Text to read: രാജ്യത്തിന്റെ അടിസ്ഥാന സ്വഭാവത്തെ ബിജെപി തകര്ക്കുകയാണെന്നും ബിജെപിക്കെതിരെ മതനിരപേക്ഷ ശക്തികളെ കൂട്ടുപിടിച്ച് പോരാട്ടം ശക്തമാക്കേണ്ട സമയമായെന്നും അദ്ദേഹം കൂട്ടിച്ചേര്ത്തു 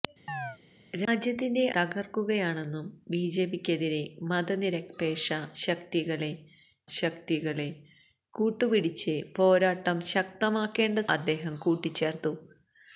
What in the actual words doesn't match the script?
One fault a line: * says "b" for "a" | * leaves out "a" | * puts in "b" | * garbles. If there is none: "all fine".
* leaves out "അടിസ്ഥാന സ്വഭാവത്തെ ബിജെപി"
* puts in "ശക്തികളെ"
* leaves out "സമയമായെന്നും"